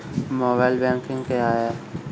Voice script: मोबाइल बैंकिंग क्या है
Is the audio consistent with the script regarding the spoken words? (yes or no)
yes